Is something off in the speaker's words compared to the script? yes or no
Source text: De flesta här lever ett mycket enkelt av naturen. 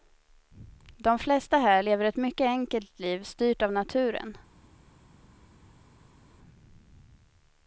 yes